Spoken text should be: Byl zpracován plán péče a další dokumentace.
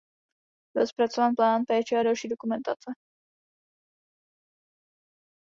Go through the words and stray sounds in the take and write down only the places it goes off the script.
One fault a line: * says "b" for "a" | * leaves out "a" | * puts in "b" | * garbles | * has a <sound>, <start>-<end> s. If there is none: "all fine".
all fine